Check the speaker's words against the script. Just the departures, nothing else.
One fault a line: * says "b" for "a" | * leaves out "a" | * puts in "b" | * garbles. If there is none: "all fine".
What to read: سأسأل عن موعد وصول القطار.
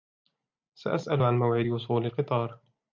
all fine